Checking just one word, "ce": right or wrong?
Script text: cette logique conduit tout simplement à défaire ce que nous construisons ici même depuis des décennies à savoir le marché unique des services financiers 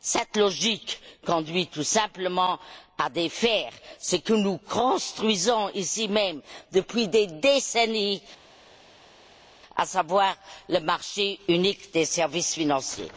right